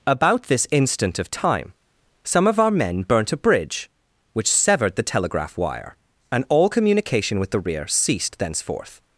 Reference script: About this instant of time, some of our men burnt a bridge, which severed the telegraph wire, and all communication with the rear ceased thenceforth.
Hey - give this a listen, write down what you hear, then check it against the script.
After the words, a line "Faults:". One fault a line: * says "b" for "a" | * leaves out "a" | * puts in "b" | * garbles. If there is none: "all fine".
About this instant of time, some of our men burnt a bridge, which severed the telegraph wire, and all communication with the rear ceased thenceforth.
Faults:
all fine